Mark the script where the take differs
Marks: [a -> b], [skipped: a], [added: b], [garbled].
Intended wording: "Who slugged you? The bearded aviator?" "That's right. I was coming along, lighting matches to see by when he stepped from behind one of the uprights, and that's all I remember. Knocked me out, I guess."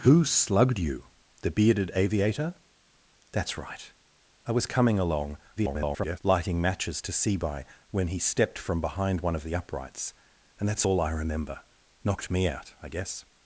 "Who slugged you? The bearded aviator?" "That's right. I was coming along, [garbled] lighting matches to see by when he stepped from behind one of the uprights, and that's all I remember. Knocked me out, I guess."